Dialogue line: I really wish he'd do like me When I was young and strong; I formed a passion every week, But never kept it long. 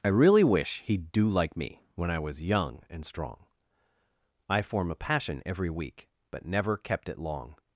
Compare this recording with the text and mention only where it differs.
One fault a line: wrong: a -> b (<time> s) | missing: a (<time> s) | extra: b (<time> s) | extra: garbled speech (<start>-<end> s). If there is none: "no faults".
wrong: formed -> form (4.6 s)